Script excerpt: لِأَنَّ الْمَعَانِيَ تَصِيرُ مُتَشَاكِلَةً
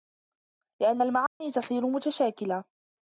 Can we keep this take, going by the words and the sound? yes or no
no